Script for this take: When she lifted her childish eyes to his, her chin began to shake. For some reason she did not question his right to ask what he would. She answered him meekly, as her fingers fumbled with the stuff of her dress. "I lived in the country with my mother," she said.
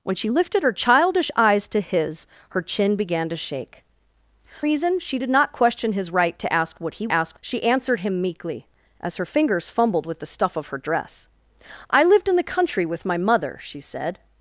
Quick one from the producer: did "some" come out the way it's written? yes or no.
no